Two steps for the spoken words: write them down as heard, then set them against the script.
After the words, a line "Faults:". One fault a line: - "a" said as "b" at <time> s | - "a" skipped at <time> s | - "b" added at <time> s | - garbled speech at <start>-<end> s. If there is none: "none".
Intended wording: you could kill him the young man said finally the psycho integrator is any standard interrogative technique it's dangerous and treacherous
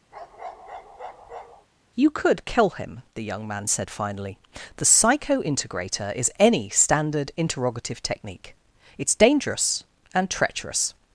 you could kill him the young man said finally the psycho integrator is any standard interrogative technique it's dangerous and treacherous
Faults:
none